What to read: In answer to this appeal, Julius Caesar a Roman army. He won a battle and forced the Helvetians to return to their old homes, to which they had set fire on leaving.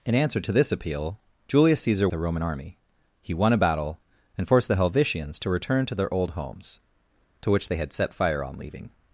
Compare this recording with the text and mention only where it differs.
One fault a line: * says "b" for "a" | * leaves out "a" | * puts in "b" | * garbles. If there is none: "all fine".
all fine